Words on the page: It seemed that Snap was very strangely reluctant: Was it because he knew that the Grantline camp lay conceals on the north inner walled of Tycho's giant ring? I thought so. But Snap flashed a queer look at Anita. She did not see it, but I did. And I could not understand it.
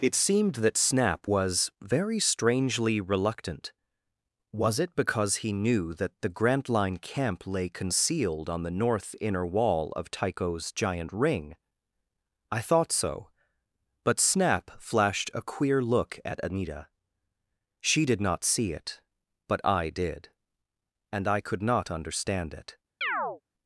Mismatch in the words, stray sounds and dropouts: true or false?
true